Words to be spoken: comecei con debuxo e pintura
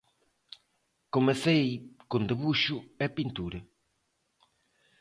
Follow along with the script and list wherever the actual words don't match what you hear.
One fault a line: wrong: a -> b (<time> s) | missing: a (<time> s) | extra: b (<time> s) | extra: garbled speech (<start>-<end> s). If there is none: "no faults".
no faults